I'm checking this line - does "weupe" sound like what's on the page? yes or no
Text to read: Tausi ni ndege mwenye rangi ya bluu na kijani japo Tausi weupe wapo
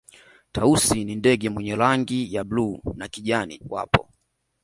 no